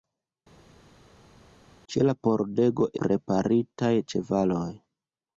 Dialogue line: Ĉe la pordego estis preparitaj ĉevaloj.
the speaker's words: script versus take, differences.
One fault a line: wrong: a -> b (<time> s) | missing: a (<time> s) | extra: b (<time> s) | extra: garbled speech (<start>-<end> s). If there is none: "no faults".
missing: estis (2.9 s)